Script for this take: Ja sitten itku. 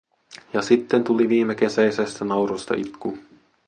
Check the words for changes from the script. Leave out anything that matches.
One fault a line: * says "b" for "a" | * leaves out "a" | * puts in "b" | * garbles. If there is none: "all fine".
* puts in "tuli viimekesäisestä naurusta"